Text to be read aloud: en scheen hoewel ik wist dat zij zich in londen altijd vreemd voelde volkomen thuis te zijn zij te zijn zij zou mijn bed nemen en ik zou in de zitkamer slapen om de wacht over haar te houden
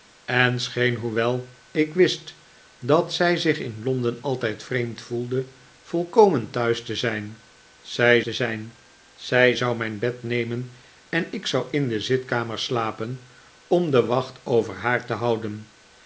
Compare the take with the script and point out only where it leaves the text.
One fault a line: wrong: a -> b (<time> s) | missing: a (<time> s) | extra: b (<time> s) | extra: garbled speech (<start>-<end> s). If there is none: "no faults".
no faults